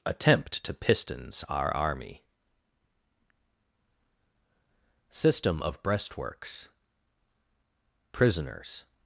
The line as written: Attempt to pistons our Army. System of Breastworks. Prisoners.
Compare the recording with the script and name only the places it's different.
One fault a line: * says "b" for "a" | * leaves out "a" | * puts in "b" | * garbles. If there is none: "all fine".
all fine